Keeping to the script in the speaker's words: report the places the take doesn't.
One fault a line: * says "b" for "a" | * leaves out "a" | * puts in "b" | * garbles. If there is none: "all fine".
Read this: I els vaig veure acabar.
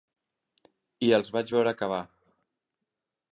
all fine